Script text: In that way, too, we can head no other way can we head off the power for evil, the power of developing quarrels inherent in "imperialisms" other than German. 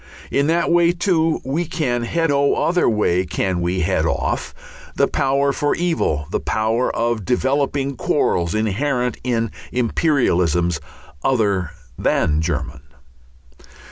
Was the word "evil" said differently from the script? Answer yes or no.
no